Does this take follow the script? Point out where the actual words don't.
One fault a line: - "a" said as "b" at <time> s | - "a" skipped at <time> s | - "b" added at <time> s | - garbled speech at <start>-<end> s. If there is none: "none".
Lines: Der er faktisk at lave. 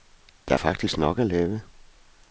- "nok" added at 1.0 s